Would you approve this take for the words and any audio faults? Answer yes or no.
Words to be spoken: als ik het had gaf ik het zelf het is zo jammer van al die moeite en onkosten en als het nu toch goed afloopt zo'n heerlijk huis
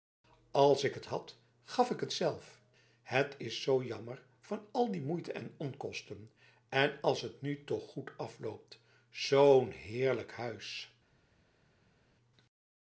yes